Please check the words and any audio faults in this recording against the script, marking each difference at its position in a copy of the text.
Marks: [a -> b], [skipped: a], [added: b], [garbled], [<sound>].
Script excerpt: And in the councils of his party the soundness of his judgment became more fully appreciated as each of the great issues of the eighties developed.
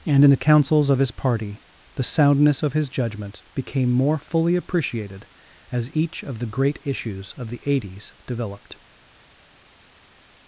And in the councils of his party the soundness of his judgment became more fully appreciated as each of the great issues of the eighties developed.